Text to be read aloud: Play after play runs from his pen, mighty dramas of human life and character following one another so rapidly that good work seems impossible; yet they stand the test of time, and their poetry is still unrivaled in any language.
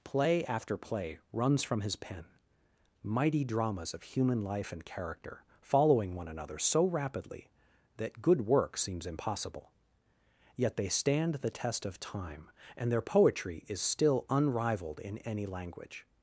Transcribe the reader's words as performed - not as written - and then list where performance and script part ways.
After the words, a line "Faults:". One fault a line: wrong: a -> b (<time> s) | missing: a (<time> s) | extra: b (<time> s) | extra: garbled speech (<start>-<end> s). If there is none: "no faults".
Play after play runs from his pen, mighty dramas of human life and character following one another so rapidly that good work seems impossible; yet they stand the test of time, and their poetry is still unrivaled in any language.
Faults:
no faults